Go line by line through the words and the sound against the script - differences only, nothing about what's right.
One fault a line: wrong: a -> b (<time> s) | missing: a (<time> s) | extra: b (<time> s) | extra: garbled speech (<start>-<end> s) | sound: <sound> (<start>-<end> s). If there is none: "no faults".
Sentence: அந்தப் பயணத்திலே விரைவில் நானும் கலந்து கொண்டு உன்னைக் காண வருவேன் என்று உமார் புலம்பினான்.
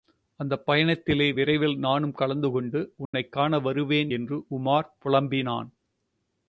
sound: dropout (3.1-3.1 s)